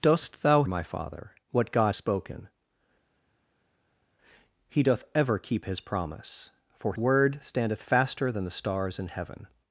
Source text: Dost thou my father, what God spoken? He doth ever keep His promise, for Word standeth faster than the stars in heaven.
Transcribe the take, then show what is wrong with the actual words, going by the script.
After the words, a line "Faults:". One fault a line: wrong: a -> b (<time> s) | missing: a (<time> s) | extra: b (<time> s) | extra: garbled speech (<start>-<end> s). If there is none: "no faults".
Dost thou my father, what God spoken? He doth ever keep His promise, for Word standeth faster than the stars in heaven.
Faults:
no faults